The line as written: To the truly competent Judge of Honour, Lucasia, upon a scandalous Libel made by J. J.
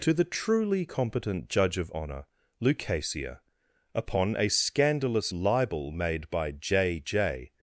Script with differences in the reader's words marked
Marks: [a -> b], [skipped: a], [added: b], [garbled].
To the truly competent Judge of Honour, Lucasia, upon a scandalous Libel made by J. J.